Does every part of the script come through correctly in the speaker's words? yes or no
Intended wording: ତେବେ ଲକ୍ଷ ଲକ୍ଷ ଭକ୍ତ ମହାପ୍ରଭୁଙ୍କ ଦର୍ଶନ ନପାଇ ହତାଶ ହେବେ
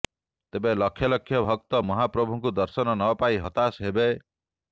yes